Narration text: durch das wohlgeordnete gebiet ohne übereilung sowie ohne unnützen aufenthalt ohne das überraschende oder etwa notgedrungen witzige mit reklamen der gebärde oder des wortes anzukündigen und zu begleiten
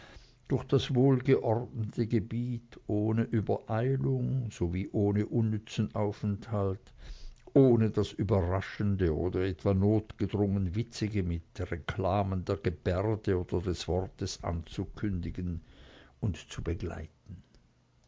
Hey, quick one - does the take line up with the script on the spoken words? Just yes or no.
yes